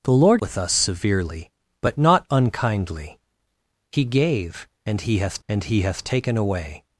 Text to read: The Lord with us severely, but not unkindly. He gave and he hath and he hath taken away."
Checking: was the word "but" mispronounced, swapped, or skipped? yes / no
no